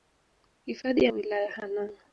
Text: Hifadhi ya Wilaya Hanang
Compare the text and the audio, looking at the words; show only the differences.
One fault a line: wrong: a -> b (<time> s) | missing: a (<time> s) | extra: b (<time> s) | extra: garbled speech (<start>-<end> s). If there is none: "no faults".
no faults